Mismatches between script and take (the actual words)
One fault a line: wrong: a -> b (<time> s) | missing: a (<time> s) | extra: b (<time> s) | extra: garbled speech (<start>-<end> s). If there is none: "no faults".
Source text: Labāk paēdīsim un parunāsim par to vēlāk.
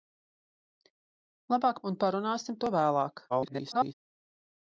missing: paēdīsim (1.8 s)
missing: par (2.6 s)
extra: garbled speech (3.3-3.9 s)